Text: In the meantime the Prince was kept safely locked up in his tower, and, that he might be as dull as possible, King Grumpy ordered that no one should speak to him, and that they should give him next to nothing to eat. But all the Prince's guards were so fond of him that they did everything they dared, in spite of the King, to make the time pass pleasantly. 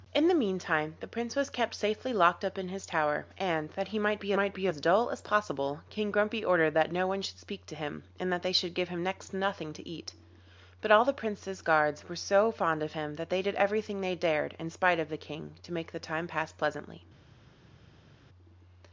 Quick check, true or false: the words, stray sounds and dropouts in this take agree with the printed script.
false